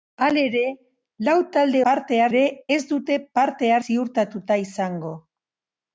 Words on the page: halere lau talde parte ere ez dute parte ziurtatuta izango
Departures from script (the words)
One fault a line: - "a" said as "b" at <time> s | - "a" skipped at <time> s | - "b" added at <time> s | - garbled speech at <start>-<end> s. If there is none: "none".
none